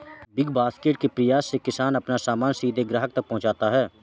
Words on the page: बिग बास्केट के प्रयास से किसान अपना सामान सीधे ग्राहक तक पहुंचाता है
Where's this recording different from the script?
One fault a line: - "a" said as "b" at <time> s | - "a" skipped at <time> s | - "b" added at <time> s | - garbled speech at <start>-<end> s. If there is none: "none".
none